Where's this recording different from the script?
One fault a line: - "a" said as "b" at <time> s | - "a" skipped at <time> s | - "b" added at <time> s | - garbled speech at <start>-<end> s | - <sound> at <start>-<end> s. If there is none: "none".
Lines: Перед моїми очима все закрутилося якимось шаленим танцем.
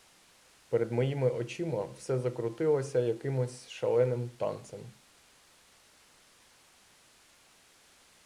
none